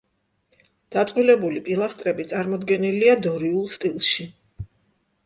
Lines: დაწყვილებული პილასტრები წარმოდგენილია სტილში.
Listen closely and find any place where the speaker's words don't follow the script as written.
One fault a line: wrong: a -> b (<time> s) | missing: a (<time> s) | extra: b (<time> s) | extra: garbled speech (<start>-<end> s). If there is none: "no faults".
extra: დორიულ (3.3 s)